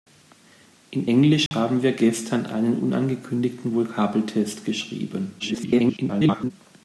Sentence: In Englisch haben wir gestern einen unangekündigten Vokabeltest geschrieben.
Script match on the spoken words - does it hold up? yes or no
no